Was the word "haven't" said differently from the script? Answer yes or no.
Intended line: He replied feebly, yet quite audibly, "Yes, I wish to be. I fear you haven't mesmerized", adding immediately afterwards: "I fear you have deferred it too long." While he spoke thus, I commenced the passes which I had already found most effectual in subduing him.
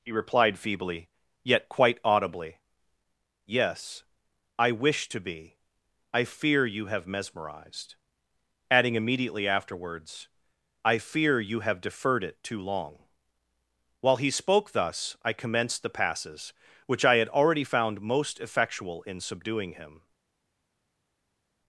yes